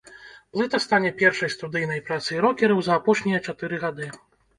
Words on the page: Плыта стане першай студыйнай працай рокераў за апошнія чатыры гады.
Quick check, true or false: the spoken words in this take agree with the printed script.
true